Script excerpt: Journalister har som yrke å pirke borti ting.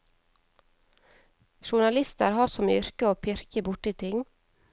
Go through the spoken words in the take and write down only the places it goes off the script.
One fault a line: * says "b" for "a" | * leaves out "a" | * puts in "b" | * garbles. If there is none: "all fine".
all fine